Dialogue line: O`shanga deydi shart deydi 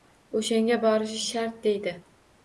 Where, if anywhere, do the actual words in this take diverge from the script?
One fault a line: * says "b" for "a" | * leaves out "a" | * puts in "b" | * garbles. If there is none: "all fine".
* says "borishi" for "deydi"